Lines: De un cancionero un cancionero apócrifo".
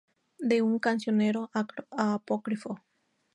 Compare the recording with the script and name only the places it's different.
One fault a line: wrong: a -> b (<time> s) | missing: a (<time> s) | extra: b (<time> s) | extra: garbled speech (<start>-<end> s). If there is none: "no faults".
missing: un cancionero (1.5 s)